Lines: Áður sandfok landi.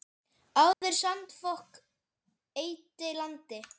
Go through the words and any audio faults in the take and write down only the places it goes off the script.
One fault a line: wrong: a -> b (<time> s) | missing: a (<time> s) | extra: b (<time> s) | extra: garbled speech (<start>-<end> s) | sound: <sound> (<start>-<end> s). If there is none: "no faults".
sound: dropout (0.7-0.8 s)
extra: eyddi (2.6 s)